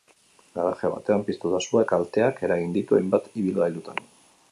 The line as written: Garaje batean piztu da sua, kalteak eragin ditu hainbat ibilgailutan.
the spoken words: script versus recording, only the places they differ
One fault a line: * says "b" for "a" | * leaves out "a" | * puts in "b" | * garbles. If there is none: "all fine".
all fine